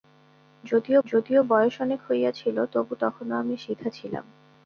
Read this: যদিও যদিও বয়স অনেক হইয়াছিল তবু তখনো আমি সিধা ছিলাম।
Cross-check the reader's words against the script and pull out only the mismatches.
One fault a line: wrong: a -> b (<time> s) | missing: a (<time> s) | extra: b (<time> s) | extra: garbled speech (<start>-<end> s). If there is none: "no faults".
no faults